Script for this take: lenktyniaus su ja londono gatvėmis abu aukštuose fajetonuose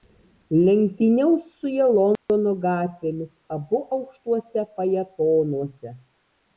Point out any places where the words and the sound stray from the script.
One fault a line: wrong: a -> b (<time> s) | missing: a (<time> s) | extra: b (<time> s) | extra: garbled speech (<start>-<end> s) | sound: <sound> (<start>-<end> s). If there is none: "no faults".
sound: dropout (2.2-2.3 s)